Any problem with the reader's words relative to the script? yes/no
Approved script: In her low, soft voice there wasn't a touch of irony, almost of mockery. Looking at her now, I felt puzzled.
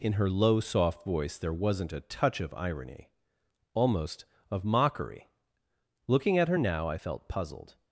no